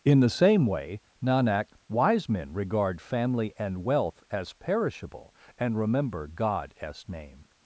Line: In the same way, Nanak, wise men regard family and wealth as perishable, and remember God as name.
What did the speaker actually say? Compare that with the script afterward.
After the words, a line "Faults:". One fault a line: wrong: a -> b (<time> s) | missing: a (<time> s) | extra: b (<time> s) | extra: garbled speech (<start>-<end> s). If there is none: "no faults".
In the same way, Nanak, wise men regard family and wealth as perishable, and remember God as name.
Faults:
no faults